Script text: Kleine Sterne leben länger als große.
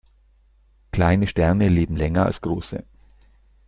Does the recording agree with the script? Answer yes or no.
yes